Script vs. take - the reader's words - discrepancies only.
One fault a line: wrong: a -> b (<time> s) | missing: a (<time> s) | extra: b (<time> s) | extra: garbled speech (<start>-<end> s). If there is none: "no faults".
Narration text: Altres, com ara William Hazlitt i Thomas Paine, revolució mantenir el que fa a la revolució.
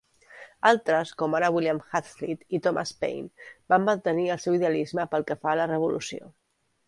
wrong: revolució -> van (3.7 s)
extra: seu idealisme pel (4.5 s)